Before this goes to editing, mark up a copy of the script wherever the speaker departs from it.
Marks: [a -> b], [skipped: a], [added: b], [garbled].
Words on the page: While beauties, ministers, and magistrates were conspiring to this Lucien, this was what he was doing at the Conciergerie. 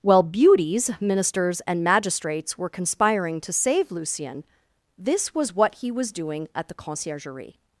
While beauties, ministers, and magistrates were conspiring to [this -> save] Lucien, this was what he was doing at the Conciergerie.